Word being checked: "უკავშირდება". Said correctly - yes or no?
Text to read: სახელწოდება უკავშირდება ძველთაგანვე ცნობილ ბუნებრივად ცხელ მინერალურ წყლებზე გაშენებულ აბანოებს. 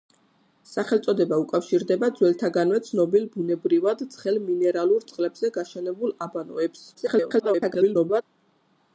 yes